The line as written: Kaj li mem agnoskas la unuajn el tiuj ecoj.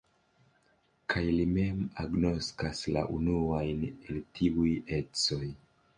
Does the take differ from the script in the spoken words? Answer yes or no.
no